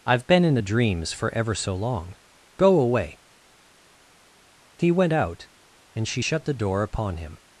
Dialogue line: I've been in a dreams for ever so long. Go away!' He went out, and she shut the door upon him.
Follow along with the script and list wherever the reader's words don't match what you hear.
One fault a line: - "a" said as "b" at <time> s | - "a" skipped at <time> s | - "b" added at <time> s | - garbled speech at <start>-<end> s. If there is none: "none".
none